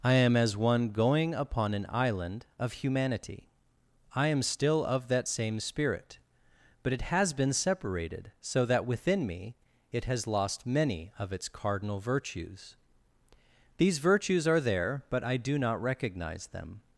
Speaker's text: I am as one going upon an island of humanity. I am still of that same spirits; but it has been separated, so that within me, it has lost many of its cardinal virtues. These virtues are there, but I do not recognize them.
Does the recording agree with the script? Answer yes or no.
no